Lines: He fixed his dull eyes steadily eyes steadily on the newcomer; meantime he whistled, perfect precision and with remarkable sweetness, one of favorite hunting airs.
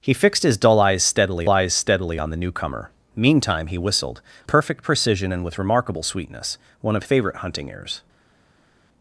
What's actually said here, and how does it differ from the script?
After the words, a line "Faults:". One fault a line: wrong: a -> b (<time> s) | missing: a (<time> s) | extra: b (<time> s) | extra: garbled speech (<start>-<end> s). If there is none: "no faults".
He fixed his dull eyes steadily eyes steadily on the newcomer; meantime he whistled, perfect precision and with remarkable sweetness, one of favorite hunting airs.
Faults:
no faults